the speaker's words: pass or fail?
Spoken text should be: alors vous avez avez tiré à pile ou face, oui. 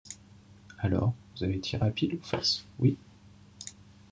fail